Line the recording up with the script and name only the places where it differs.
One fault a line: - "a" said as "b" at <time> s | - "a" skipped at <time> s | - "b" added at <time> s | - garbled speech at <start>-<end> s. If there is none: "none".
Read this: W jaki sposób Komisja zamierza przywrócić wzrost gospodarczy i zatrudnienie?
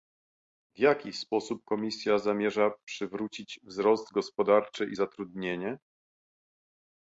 none